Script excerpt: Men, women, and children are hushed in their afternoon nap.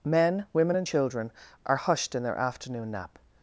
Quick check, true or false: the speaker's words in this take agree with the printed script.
true